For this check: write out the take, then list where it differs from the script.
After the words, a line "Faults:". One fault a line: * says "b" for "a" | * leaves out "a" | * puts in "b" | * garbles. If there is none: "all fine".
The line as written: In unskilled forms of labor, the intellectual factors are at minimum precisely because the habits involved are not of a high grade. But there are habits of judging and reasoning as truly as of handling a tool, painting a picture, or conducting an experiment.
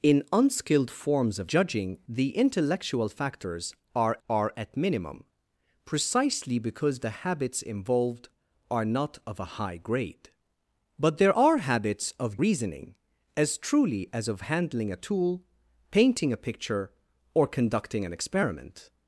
In unskilled forms of judging, the intellectual factors are are at minimum precisely because the habits involved are not of a high grade. But there are habits of reasoning as truly as of handling a tool, painting a picture, or conducting an experiment.
Faults:
* says "judging" for "labor"
* puts in "are"
* leaves out "judging and"